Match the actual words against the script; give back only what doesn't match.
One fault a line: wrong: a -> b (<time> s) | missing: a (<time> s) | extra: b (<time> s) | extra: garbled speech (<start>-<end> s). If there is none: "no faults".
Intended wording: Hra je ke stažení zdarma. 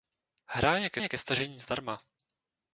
extra: je ke (1.0 s)